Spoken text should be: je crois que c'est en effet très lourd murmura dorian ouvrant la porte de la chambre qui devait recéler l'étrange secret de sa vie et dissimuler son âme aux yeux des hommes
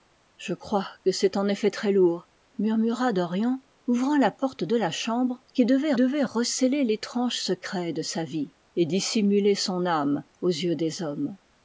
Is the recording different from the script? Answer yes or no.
yes